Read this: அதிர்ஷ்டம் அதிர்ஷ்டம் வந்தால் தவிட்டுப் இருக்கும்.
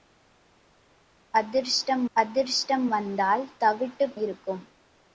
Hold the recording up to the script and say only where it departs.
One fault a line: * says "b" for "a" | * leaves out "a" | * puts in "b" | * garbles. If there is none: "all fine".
all fine